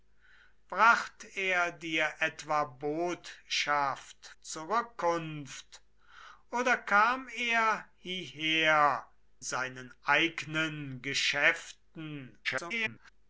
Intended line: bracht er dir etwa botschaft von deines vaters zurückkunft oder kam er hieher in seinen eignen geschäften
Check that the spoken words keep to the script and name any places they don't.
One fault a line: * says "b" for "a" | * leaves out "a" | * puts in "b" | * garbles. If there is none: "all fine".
* leaves out "von deines vaters"
* leaves out "in"
* garbles